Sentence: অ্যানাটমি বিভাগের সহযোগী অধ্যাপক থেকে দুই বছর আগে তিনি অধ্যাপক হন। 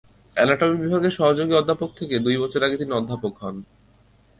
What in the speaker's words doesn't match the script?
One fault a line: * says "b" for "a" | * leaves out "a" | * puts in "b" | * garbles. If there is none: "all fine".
all fine